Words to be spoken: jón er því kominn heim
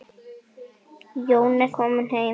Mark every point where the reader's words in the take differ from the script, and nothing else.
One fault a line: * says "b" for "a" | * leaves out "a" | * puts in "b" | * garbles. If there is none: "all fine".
* leaves out "því"